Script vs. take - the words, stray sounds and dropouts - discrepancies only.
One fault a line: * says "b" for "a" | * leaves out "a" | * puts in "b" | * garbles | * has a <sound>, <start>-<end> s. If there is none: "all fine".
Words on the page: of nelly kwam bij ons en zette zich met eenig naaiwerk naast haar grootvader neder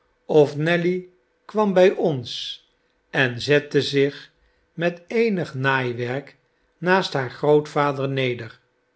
all fine